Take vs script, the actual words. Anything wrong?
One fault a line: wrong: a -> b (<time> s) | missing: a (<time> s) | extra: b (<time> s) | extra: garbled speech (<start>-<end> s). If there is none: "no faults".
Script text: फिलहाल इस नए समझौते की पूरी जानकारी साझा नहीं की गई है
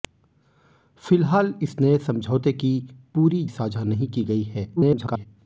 missing: जानकारी (3.4 s)
extra: garbled speech (4.8-5.3 s)